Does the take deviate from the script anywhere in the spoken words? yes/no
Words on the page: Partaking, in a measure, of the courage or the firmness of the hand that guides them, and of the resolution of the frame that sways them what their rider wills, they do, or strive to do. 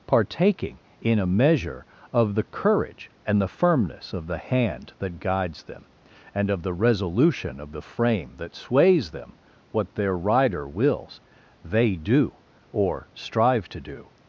yes